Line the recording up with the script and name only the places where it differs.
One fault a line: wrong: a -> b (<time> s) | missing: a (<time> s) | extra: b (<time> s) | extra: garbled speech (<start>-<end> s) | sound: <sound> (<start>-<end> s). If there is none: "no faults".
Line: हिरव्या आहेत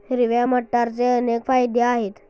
extra: मटारचे अनेक फायदे (0.4 s)